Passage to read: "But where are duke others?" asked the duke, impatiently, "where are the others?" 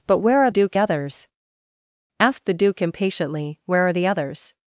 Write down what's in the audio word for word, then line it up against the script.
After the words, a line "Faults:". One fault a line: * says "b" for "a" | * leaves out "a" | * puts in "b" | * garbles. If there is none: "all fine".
"But where are duke others?" asked the duke, impatiently, "where are the others?"
Faults:
all fine